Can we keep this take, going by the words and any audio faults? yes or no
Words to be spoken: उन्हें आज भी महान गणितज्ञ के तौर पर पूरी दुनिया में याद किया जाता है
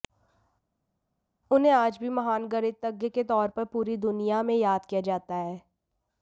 yes